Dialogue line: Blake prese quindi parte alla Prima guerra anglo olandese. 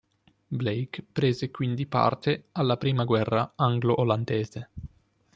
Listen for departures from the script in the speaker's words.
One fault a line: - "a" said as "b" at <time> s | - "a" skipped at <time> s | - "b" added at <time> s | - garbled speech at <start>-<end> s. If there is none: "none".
none